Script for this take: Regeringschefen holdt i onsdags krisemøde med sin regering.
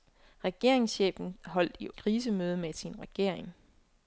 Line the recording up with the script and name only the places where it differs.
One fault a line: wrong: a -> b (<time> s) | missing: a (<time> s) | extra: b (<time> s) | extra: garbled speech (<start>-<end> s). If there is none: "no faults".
missing: onsdags (1.9 s)